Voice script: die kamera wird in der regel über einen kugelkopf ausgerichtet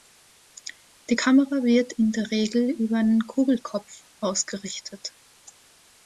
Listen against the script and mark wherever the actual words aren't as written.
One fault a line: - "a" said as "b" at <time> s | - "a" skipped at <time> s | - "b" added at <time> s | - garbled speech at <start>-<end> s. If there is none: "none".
none